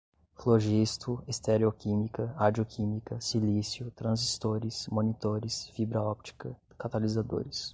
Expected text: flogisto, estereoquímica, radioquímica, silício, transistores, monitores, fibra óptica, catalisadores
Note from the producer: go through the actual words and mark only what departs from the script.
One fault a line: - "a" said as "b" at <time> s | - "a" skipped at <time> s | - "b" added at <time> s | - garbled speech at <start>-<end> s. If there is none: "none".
none